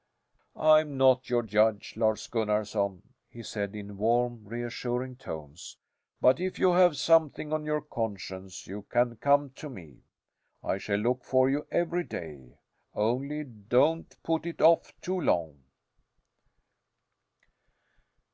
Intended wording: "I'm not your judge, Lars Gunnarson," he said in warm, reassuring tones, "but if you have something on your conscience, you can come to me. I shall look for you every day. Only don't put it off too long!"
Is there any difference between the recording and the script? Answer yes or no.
no